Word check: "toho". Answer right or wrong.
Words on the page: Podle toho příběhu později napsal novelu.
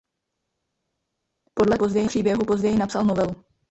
wrong